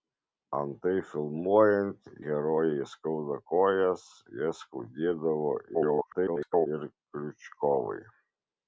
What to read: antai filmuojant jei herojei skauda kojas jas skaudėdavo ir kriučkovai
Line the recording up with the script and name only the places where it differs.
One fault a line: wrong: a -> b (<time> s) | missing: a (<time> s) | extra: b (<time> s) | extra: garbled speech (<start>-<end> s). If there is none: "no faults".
missing: jei (2.1 s)
extra: garbled speech (5.7-6.7 s)